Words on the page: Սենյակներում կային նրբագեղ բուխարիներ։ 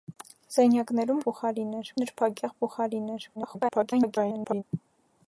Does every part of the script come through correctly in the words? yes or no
no